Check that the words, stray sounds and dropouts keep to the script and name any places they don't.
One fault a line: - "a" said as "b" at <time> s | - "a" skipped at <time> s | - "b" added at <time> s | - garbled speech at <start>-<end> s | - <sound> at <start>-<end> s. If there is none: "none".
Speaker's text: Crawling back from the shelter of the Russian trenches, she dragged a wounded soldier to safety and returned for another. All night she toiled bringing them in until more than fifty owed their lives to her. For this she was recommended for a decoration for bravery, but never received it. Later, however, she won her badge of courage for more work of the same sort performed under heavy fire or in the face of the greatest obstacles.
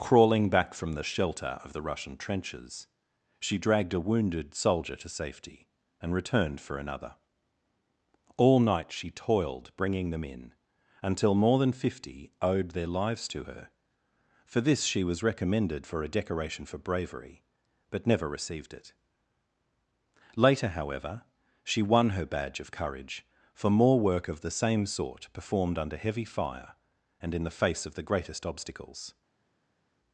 - "or" said as "and" at 27.2 s